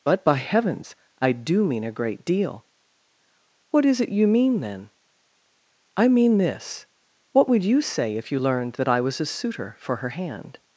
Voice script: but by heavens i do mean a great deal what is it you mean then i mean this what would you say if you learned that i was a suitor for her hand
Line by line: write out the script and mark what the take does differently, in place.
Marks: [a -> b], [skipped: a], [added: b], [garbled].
but by heavens i do mean a great deal what is it you mean then i mean this what would you say if you learned that i was a suitor for her hand